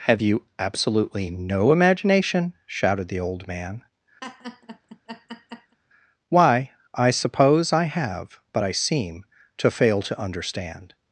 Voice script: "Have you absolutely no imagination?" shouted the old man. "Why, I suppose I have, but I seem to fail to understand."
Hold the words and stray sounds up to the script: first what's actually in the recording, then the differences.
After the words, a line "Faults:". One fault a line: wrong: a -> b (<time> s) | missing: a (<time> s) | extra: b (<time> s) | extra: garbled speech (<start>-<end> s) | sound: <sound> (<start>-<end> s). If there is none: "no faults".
"Have you absolutely no imagination?" shouted the old man. "Why, I suppose I have, but I seem to fail to understand."
Faults:
sound: laugh (4.2-5.8 s)